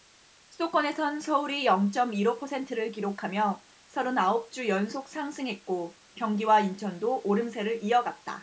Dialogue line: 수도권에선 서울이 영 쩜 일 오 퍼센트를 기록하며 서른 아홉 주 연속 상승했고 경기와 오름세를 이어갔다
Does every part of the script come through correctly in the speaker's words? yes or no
no